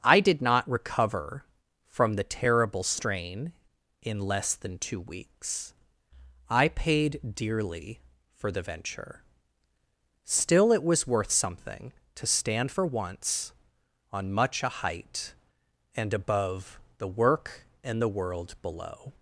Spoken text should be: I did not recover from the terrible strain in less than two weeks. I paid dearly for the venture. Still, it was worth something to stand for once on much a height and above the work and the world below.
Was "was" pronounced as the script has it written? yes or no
yes